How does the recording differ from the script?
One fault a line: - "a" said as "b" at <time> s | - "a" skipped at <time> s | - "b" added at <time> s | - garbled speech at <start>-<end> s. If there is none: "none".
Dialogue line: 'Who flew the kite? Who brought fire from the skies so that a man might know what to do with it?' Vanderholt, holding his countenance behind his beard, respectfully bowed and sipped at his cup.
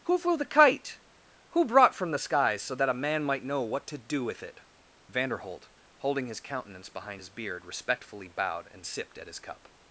- "fire" skipped at 1.9 s